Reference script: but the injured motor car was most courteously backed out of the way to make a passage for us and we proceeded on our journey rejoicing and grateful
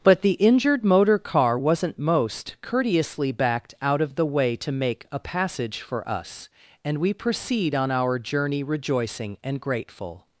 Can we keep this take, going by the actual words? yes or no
no